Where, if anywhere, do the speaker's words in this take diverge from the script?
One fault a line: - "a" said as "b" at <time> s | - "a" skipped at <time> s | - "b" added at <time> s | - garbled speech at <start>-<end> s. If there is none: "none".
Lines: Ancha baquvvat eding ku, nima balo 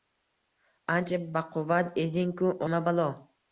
none